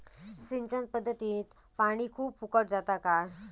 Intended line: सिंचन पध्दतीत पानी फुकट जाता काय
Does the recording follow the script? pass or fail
fail